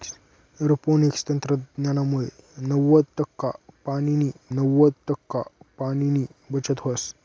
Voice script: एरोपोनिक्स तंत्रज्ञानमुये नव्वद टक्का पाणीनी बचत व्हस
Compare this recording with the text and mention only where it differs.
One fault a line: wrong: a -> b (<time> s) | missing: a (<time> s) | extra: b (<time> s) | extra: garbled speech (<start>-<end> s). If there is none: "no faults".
extra: नव्वद टक्का पाणीनी (4.5 s)